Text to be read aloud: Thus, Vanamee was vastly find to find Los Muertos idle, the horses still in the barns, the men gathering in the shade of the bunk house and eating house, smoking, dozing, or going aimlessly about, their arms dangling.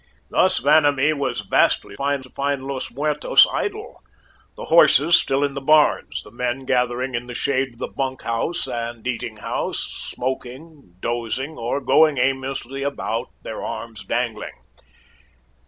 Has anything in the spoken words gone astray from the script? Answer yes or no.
no